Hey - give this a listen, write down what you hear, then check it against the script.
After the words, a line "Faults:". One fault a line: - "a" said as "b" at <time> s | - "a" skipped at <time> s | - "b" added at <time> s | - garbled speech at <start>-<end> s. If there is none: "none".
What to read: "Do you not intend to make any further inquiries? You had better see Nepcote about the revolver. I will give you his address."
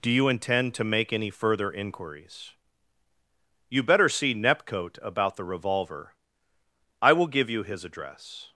"Do you intend to make any further inquiries? You better see Nepcote about the revolver. I will give you his address."
Faults:
- "not" skipped at 0.3 s
- "had" skipped at 3.8 s